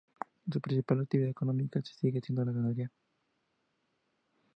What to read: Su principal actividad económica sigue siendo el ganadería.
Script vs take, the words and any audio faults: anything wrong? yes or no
yes